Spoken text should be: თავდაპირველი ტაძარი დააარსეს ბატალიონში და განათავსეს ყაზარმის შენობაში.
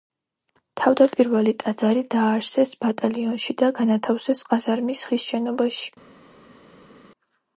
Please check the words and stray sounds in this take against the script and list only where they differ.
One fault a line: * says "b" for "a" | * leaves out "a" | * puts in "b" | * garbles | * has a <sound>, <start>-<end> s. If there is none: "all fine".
* puts in "ხის"